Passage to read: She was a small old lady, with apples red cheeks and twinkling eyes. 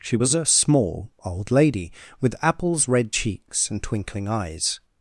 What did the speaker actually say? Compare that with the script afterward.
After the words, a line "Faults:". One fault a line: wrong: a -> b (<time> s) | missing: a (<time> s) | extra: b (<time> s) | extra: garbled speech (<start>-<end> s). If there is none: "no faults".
She was a small old lady, with apples red cheeks and twinkling eyes.
Faults:
no faults